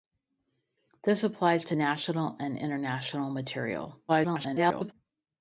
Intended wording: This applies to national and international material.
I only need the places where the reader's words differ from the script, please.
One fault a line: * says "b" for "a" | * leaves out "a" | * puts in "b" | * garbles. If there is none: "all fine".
* garbles